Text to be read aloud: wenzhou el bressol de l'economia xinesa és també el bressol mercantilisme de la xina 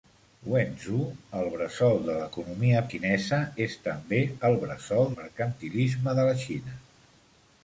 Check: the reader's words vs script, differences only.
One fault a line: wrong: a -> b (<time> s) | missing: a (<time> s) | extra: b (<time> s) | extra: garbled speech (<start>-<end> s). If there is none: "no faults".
no faults